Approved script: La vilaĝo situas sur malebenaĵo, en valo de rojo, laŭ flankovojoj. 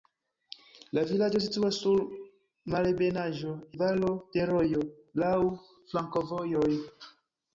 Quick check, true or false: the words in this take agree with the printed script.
false